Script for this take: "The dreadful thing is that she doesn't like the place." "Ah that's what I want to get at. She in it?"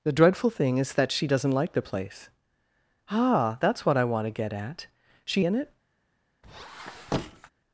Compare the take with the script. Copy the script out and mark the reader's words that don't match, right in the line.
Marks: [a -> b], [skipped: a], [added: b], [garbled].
"The dreadful thing is that she doesn't like the place." "Ah that's what I want to get at. She in it?"